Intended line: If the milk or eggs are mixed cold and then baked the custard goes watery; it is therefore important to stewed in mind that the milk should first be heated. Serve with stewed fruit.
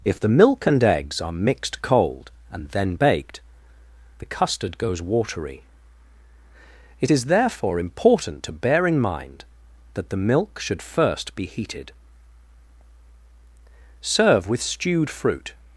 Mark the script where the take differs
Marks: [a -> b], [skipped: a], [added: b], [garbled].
If the milk [or -> and] eggs are mixed cold and then baked the custard goes watery; it is therefore important to [stewed -> bear] in mind that the milk should first be heated. Serve with stewed fruit.